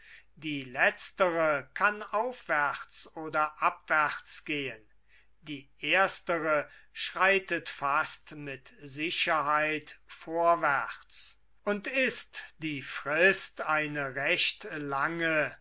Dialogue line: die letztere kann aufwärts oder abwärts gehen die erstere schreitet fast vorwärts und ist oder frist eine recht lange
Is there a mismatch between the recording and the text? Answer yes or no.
yes